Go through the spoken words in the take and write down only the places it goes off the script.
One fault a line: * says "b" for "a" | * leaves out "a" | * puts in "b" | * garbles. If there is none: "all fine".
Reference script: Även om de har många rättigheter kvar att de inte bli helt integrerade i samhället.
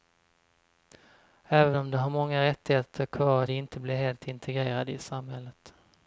all fine